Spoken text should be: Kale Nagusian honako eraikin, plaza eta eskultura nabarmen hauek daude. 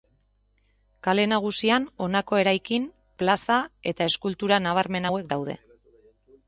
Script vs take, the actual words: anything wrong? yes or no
no